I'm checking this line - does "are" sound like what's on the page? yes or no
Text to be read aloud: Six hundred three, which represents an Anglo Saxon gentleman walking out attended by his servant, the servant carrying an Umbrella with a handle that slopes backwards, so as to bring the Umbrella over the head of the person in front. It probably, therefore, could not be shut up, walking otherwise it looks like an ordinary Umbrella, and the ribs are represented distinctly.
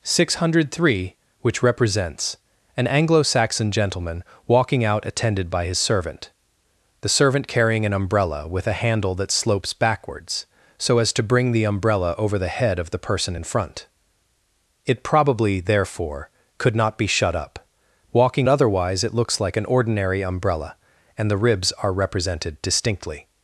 yes